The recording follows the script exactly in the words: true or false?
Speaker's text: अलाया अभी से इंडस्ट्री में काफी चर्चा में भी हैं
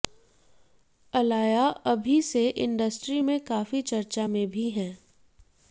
true